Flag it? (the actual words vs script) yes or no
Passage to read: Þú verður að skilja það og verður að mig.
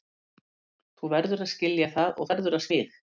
no